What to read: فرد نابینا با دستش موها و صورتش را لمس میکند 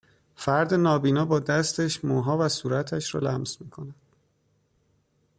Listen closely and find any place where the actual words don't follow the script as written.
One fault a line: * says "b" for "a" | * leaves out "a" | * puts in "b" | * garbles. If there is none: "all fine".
all fine